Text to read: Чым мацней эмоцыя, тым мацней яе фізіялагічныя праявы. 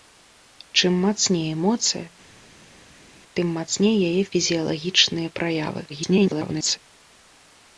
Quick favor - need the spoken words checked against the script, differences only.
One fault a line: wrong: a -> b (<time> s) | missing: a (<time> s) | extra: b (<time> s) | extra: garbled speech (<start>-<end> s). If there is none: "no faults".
extra: garbled speech (5.9-6.8 s)